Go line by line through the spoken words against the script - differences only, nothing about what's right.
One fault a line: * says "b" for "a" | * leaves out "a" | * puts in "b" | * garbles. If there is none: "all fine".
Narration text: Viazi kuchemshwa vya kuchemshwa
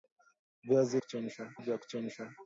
all fine